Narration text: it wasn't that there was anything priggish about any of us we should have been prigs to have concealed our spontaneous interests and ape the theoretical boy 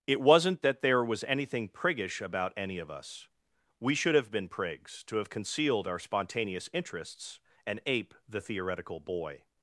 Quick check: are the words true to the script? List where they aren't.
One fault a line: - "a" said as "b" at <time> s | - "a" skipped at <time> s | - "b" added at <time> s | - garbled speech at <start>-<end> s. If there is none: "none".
none